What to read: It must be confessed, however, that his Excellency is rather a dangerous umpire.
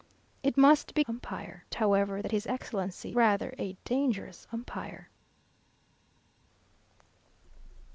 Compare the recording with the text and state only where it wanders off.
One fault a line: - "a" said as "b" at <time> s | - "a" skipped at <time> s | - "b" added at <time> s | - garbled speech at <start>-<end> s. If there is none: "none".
- "confessed" said as "umpire" at 1.1 s
- "is" skipped at 3.2 s